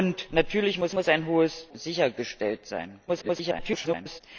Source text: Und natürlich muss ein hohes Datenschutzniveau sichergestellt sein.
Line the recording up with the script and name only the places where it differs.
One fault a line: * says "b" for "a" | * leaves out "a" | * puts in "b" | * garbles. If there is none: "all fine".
* puts in "muss"
* leaves out "Datenschutzniveau"
* garbles